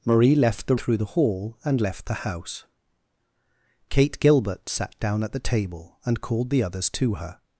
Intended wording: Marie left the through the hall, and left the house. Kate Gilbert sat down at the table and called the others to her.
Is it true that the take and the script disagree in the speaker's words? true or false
false